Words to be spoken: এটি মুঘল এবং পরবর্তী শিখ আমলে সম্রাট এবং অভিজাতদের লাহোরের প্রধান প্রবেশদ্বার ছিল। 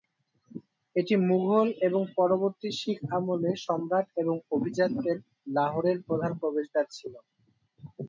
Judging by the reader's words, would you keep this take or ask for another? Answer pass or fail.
pass